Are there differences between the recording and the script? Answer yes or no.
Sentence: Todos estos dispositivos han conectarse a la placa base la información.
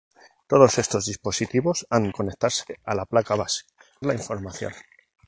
no